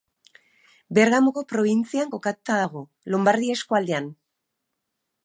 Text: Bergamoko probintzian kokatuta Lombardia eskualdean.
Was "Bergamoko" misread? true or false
false